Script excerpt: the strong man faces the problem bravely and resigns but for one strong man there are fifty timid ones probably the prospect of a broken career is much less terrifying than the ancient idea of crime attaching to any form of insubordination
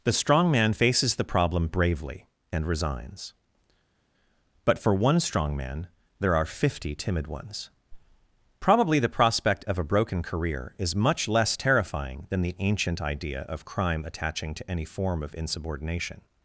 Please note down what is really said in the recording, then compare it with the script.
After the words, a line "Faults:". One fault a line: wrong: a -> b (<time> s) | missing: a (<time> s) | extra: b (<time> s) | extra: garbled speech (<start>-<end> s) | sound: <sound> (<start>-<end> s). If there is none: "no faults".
the strong man faces the problem bravely and resigns but for one strong man there are fifty timid ones probably the prospect of a broken career is much less terrifying than the ancient idea of crime attaching to any form of insubordination
Faults:
no faults